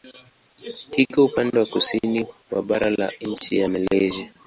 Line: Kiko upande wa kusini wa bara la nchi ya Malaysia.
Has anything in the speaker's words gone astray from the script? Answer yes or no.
no